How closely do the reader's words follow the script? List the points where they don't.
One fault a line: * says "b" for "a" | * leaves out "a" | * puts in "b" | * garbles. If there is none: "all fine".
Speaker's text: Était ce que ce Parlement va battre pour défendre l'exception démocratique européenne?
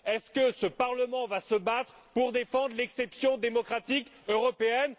* says "Est" for "Était"
* puts in "se"